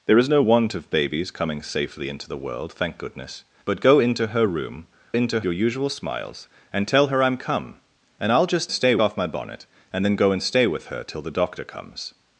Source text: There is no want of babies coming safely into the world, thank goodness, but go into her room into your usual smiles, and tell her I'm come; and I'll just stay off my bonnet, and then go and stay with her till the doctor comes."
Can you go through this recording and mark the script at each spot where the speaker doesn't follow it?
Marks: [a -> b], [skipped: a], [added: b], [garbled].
There is no want of babies coming safely into the world, thank goodness, but go into her room into your usual smiles, and tell her I'm come; and I'll just stay off my bonnet, and then go and stay with her till the doctor comes."